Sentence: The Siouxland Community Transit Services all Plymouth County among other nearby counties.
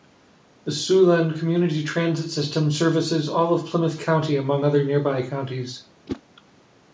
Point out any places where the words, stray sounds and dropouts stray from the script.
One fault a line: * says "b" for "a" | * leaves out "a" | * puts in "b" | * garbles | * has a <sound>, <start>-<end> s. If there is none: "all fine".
* puts in "System"
* puts in "of"
* has a whoosh, 6.1-6.2 s